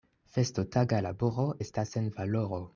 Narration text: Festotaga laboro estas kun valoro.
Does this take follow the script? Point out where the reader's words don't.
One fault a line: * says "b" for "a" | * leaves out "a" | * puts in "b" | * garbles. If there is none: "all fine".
* says "sen" for "kun"